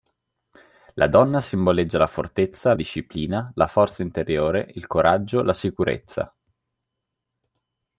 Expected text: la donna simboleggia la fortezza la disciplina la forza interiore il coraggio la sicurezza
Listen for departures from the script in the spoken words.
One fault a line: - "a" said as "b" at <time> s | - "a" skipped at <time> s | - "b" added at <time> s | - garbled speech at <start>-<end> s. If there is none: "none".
- "la" skipped at 2.7 s